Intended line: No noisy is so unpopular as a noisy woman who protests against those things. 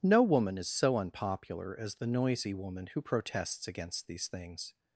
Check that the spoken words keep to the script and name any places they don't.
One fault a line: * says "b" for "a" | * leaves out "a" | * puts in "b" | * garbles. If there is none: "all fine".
* says "woman" for "noisy"
* says "the" for "a"
* says "these" for "those"